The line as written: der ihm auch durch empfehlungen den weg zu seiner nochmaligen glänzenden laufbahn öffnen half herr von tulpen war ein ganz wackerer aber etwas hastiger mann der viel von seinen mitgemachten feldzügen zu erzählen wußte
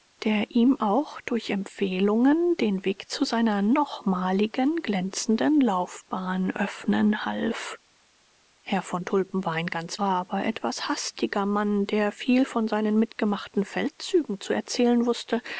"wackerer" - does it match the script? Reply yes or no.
no